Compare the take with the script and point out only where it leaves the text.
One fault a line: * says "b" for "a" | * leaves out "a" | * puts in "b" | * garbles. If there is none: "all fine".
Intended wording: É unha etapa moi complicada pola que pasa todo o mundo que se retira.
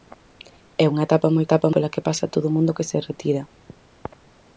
* says "etapa" for "complicada"